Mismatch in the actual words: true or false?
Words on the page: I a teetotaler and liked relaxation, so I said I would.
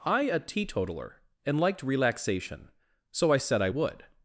false